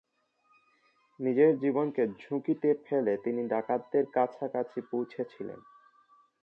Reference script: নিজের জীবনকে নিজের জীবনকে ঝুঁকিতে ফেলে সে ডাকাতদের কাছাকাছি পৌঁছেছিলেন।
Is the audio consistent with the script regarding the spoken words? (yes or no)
no